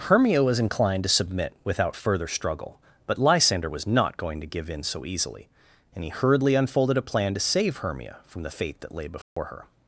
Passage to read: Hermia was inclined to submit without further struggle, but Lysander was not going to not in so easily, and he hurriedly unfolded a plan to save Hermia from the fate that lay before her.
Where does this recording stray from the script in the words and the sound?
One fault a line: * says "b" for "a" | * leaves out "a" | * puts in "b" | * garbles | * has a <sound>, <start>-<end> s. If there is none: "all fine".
* says "give" for "not"
* has a dropout, 9.2-9.4 s